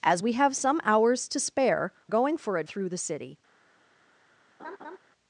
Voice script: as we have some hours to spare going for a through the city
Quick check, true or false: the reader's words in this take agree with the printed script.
true